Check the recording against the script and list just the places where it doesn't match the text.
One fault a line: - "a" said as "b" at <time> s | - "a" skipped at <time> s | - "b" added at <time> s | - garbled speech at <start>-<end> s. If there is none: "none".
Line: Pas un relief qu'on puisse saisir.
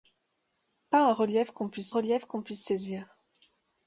- "relief qu'on puisse" added at 1.9 s